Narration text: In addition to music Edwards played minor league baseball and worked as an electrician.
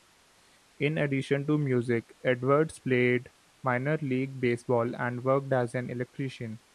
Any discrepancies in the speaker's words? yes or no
no